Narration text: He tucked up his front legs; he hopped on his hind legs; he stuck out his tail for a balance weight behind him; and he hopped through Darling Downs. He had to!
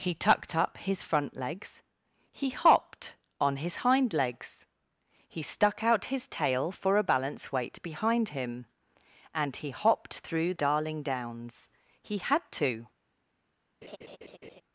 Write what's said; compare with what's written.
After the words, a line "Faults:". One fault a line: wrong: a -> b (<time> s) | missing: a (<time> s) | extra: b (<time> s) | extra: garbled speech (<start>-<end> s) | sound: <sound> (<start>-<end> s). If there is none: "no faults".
He tucked up his front legs; he hopped on his hind legs; he stuck out his tail for a balance weight behind him; and he hopped through Darling Downs. He had to!
Faults:
sound: laugh (13.8-14.6 s)